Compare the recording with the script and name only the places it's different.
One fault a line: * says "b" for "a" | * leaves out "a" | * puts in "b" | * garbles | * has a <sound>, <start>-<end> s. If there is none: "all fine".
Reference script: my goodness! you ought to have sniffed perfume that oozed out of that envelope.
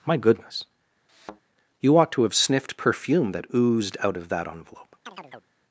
* has a thud, 1.1-1.4 s
* has a chirp, 5.1-5.5 s